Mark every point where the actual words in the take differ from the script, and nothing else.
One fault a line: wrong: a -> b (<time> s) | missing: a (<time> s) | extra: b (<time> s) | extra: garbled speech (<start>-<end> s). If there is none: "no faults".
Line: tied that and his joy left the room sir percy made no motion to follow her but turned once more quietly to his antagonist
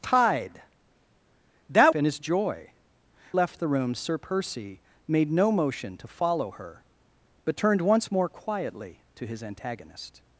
no faults